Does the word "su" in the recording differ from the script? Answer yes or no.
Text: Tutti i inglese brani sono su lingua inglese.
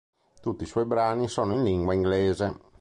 yes